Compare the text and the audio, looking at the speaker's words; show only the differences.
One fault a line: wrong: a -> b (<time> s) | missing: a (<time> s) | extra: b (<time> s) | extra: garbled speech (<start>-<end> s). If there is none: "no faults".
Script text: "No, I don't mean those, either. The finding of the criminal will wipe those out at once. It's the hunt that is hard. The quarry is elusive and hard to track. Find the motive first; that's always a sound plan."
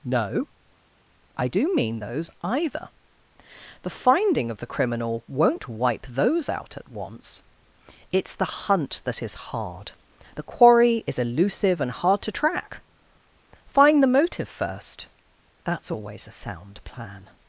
wrong: don't -> do (1.5 s)
wrong: will -> won't (5.3 s)